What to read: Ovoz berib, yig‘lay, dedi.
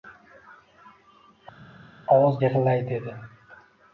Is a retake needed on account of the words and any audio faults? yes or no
yes